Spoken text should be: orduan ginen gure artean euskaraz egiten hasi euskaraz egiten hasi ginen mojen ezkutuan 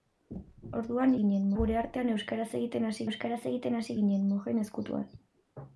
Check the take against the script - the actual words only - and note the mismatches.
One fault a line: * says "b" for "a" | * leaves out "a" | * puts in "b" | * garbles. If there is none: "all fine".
all fine